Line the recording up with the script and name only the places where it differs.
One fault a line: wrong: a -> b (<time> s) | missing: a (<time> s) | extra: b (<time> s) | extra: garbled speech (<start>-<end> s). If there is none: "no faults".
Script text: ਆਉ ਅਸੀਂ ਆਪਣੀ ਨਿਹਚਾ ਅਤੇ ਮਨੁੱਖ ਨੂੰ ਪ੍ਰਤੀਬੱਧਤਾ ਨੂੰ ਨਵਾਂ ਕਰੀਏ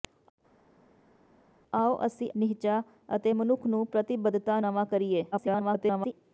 missing: ਆਪਣੀ (2.3 s)
missing: ਨੂੰ (4.6 s)
extra: garbled speech (5.3-6.1 s)